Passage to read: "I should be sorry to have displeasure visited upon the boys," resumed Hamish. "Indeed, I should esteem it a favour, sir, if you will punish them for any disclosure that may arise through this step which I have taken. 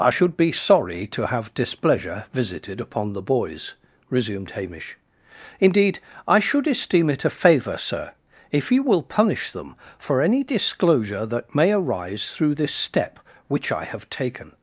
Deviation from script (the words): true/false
false